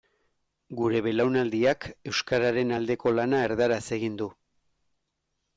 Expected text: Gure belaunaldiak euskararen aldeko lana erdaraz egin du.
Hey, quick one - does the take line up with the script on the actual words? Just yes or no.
yes